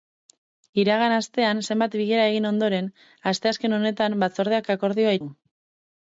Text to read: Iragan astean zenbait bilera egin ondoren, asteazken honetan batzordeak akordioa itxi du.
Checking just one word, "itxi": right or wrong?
wrong